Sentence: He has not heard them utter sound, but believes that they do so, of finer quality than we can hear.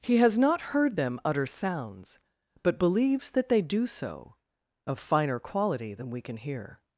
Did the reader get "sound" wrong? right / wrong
wrong